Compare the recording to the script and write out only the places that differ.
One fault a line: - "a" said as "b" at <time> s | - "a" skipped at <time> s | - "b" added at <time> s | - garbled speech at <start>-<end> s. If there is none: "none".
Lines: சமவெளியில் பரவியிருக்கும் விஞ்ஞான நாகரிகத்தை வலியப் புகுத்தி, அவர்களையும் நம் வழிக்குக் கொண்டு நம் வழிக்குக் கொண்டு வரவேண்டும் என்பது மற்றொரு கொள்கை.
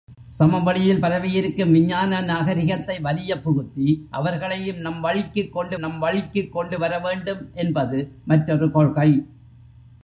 none